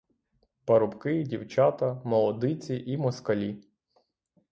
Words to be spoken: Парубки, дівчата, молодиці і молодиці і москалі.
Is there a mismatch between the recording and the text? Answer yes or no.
yes